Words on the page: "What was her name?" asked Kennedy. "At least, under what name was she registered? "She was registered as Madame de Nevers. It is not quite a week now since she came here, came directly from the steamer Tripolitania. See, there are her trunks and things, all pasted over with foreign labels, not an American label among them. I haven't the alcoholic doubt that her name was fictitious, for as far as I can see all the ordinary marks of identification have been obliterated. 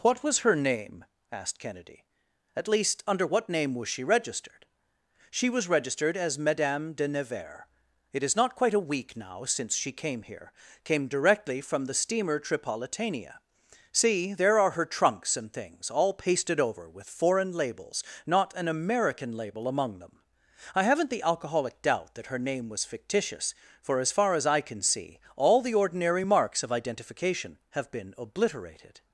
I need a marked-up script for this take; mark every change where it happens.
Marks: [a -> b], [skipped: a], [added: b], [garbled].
"What was her name?" asked Kennedy. "At least, under what name was she registered? "She was registered as Madame de Nevers. It is not quite a week now since she came here, came directly from the steamer Tripolitania. See, there are her trunks and things, all pasted over with foreign labels, not an American label among them. I haven't the alcoholic doubt that her name was fictitious, for as far as I can see all the ordinary marks of identification have been obliterated.